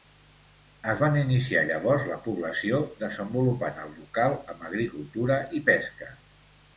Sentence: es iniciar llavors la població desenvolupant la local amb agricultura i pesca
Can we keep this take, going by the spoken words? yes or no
no